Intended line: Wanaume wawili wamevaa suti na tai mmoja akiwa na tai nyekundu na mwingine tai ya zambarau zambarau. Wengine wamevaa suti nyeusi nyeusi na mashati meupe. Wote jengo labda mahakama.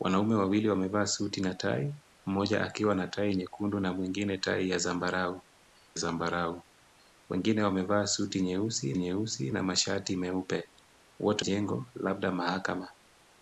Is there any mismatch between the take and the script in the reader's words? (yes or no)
no